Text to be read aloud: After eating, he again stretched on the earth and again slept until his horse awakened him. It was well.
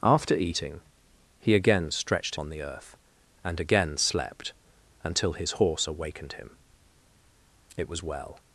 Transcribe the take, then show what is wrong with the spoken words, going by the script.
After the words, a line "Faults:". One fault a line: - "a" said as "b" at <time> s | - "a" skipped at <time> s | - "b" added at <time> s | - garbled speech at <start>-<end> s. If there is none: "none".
After eating, he again stretched on the earth and again slept until his horse awakened him. It was well.
Faults:
none